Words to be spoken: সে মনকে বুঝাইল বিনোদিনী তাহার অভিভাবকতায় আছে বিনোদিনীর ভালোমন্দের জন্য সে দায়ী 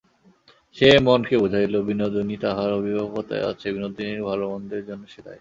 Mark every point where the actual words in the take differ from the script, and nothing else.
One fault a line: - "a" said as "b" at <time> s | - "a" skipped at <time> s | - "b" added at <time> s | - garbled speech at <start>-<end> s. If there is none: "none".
none